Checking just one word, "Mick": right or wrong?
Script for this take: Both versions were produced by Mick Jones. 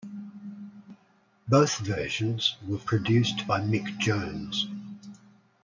right